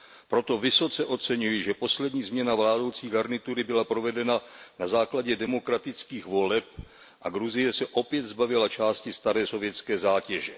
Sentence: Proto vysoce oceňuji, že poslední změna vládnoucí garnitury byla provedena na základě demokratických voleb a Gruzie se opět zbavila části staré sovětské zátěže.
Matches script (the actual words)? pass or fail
pass